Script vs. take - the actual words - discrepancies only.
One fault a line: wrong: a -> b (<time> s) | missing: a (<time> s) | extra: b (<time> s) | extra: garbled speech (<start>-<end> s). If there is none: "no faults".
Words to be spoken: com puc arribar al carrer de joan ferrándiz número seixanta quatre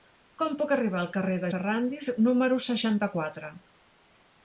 missing: joan (1.5 s)